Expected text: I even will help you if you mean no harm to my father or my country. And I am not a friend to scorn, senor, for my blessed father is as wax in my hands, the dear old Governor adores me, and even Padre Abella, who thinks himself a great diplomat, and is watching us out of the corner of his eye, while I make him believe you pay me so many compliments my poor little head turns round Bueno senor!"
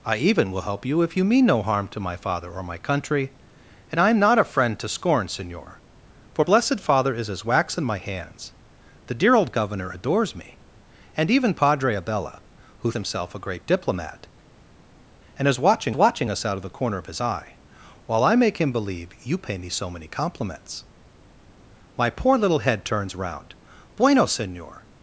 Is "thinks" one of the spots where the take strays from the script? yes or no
yes